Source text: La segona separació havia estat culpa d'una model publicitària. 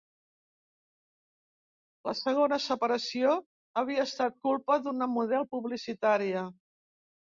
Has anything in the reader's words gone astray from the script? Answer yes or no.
no